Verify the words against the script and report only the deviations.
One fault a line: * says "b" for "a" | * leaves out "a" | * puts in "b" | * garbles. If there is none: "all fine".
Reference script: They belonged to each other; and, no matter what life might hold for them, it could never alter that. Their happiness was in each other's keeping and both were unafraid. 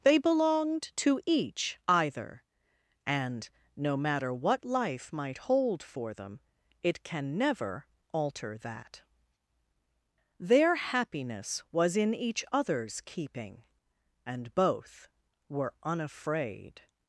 * says "either" for "other"
* says "can" for "could"